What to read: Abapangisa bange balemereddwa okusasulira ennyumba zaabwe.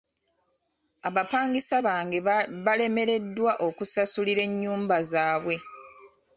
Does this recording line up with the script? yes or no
yes